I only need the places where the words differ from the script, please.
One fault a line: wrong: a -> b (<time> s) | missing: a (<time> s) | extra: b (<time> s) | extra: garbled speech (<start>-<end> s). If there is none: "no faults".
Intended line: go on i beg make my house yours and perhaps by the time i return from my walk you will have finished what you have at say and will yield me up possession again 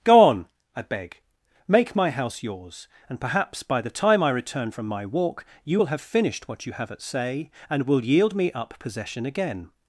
no faults